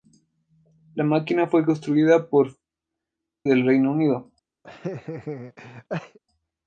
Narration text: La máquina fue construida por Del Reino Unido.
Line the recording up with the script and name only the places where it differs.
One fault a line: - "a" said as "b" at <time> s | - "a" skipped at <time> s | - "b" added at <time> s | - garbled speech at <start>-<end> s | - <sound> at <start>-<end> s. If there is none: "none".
- laugh at 4.6-6.2 s